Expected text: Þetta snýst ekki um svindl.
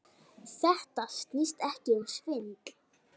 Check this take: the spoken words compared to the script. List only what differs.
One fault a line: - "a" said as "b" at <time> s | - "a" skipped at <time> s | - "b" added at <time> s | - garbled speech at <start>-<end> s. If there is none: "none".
none